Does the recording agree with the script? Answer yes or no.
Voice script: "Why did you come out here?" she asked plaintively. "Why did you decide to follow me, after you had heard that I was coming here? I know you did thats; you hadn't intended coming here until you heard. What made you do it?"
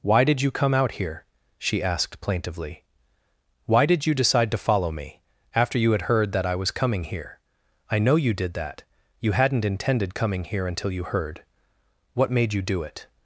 no